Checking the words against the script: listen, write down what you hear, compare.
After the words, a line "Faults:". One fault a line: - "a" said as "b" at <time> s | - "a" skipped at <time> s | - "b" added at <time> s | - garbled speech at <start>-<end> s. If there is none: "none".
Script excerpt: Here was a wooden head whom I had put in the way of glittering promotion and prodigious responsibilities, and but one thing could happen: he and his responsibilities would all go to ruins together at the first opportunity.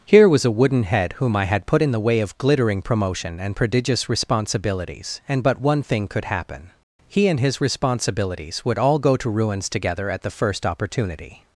Here was a wooden head whom I had put in the way of glittering promotion and prodigious responsibilities, and but one thing could happen: he and his responsibilities would all go to ruins together at the first opportunity.
Faults:
none